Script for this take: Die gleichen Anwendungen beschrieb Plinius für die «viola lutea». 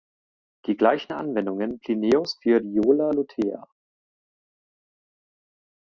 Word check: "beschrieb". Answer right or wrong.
wrong